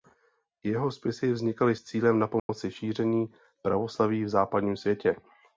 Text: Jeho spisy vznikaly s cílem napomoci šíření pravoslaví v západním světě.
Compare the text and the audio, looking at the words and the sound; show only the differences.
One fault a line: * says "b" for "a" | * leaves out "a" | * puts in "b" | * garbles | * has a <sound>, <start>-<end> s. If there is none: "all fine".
* has a dropout, 2.4-2.5 s